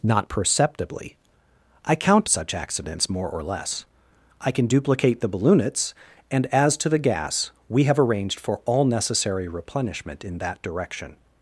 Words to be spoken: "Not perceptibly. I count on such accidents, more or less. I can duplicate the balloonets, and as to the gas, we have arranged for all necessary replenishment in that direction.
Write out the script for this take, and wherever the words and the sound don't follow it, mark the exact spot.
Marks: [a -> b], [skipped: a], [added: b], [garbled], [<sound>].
"Not perceptibly. I count [skipped: on] such accidents, more or less. I can duplicate the balloonets, and as to the gas, we have arranged for all necessary replenishment in that direction.